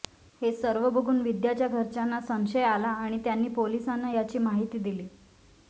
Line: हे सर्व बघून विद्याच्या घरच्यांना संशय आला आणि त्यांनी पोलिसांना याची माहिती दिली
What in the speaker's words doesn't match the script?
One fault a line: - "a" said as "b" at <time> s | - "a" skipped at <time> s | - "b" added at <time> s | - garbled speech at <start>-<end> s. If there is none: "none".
none